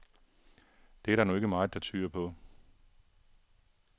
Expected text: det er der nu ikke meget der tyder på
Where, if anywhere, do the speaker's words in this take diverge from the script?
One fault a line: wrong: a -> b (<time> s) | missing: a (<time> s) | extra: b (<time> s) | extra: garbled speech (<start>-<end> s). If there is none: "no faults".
no faults